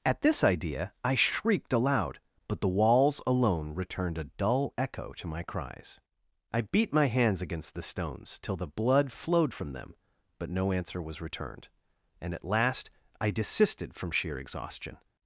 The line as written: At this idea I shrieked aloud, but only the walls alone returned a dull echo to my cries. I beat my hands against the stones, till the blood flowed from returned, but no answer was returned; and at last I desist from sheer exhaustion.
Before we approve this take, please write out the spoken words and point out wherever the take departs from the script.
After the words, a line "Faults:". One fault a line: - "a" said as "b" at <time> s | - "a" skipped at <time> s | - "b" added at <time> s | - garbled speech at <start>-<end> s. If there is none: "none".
At this idea I shrieked aloud, but the walls alone returned a dull echo to my cries. I beat my hands against the stones, till the blood flowed from them, but no answer was returned; and at last I desisted from sheer exhaustion.
Faults:
- "only" skipped at 2.6 s
- "returned" said as "them" at 9.7 s
- "desist" said as "desisted" at 13.3 s